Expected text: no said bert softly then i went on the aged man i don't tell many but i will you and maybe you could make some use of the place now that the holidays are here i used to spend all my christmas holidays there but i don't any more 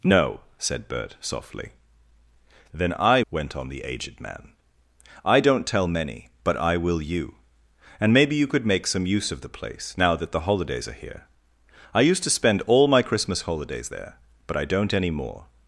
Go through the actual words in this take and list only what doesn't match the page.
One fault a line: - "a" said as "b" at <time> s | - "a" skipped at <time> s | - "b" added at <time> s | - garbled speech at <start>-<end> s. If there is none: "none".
none